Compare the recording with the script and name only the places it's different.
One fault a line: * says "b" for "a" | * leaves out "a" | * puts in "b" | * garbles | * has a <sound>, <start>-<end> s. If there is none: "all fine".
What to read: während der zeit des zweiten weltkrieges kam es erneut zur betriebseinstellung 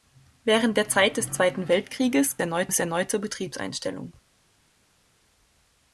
* says "erneut" for "kam"